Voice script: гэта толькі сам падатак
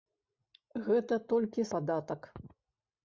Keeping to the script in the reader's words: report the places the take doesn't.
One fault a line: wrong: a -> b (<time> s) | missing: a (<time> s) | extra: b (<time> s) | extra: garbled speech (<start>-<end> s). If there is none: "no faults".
missing: сам (1.7 s)